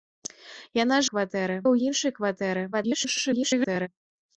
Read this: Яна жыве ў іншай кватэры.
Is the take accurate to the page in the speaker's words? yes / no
no